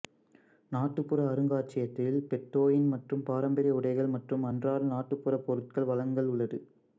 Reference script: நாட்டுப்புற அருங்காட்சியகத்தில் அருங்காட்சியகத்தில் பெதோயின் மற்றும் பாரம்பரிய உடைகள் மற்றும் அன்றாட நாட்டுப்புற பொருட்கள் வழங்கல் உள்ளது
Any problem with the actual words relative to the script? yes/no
yes